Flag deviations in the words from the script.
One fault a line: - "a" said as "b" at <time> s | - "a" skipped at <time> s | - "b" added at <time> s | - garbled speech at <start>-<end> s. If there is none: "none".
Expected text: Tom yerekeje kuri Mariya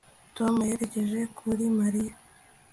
none